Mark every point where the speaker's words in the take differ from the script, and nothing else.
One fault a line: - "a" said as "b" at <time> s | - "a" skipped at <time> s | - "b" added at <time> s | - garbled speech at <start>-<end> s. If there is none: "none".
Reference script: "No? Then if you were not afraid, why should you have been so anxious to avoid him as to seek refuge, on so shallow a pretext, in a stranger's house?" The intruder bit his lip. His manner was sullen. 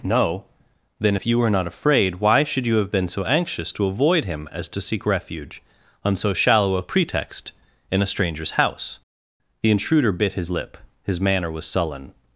none